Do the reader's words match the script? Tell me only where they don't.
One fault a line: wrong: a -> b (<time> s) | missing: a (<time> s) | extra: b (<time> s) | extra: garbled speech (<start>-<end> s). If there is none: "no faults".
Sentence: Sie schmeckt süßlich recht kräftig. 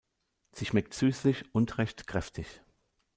extra: und (1.5 s)